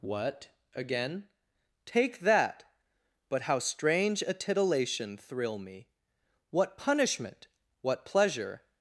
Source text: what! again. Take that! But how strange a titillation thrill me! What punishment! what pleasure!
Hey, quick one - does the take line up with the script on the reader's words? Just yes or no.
yes